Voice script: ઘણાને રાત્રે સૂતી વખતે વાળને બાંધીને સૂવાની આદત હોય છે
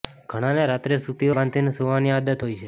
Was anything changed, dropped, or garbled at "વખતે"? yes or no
yes